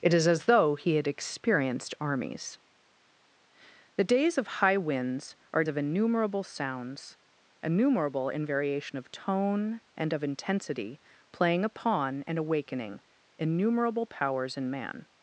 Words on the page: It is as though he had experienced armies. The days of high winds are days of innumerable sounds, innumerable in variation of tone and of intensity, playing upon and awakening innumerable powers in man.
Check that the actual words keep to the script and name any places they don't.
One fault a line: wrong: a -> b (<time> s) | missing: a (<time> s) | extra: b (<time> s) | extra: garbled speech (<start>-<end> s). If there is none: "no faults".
missing: days (5.6 s)